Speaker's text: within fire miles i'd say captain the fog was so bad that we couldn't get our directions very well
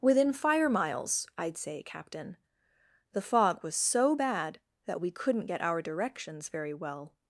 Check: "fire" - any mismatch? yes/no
no